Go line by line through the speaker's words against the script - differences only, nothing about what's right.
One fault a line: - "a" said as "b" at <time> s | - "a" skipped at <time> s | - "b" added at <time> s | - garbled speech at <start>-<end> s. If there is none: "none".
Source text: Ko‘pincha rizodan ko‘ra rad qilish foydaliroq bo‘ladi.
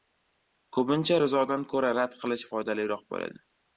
none